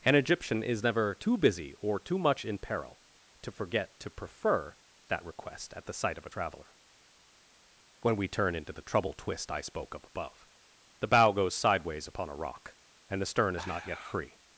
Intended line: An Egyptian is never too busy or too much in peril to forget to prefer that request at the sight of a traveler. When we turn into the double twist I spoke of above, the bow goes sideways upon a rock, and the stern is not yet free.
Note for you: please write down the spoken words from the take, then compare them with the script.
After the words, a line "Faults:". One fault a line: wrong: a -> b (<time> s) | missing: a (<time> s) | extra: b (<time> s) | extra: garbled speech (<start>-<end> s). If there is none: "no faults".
An Egyptian is never too busy or too much in peril to forget to prefer that request at the sight of a traveler. When we turn into the trouble twist I spoke of above, the bow goes sideways upon a rock, and the stern is not yet free.
Faults:
wrong: double -> trouble (8.8 s)